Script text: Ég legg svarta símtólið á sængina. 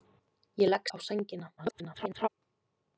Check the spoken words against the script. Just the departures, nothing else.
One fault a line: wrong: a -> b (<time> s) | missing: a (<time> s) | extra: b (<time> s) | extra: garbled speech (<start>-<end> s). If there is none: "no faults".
missing: svarta símtólið (0.9 s)
extra: garbled speech (1.6-2.3 s)